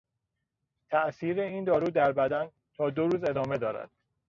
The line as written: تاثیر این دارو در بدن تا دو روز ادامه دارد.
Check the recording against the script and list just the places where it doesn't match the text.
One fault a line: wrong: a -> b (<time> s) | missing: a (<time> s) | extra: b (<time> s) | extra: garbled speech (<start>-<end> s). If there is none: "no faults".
no faults